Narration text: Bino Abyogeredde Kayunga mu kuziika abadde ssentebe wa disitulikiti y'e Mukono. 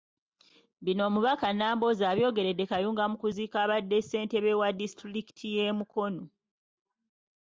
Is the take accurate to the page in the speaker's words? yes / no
no